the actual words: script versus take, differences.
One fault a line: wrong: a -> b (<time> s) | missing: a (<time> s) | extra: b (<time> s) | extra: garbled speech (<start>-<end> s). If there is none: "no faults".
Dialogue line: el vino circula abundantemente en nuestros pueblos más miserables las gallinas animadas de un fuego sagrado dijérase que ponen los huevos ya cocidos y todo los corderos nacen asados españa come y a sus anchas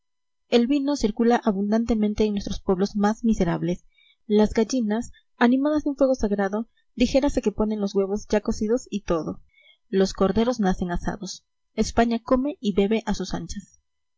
extra: bebe (12.7 s)